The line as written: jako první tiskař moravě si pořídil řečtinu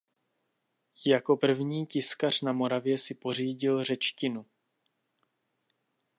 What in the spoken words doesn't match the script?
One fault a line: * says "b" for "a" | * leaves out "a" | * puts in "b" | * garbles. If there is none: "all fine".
* puts in "na"